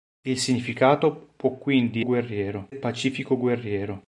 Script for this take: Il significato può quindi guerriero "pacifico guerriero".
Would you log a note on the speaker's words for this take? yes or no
no